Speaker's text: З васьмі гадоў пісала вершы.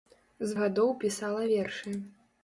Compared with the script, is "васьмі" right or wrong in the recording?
wrong